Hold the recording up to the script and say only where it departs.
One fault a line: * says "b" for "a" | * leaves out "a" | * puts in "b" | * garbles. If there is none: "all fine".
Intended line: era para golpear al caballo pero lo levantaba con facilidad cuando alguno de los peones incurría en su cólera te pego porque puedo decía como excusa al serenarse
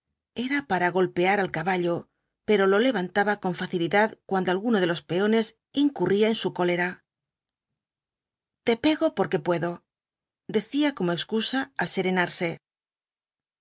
all fine